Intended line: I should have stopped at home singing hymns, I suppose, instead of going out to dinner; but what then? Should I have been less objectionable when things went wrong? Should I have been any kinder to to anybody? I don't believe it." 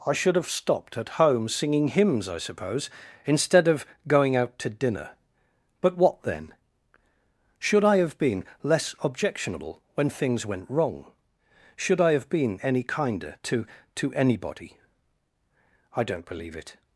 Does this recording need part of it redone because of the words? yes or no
no